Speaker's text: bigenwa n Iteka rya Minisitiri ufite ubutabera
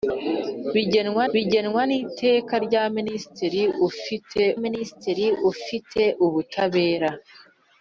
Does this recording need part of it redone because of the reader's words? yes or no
yes